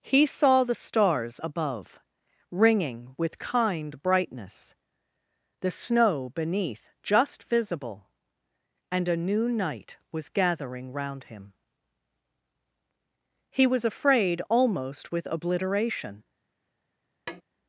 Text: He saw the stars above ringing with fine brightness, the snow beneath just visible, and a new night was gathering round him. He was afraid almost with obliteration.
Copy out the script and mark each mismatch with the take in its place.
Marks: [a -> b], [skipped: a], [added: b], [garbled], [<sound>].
He saw the stars above ringing with [fine -> kind] brightness, the snow beneath just visible, and a new night was gathering round him. He was afraid almost with obliteration. [tap]